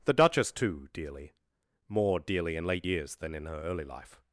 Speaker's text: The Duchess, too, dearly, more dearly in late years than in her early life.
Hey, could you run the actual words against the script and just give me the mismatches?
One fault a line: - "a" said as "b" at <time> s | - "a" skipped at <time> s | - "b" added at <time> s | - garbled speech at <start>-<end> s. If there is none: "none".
none